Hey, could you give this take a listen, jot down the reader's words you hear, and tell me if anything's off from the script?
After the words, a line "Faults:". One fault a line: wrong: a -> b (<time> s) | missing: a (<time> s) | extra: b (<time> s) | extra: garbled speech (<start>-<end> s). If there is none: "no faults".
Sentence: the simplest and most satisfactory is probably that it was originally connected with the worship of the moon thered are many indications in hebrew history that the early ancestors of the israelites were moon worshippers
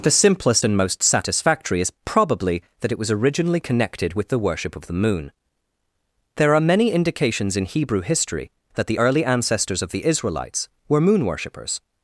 the simplest and most satisfactory is probably that it was originally connected with the worship of the moon there are many indications in hebrew history that the early ancestors of the israelites were moon worshippers
Faults:
wrong: thered -> there (6.4 s)